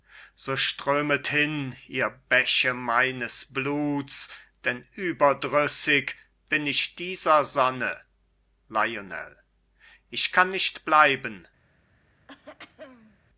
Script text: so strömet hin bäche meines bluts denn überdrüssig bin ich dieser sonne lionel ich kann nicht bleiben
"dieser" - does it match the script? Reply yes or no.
yes